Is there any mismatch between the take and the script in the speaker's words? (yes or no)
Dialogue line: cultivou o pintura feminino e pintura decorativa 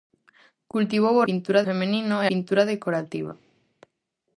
no